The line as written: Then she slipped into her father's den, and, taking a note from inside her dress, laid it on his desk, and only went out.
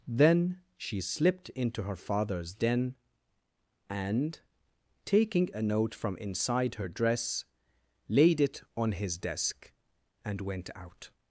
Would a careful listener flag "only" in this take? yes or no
yes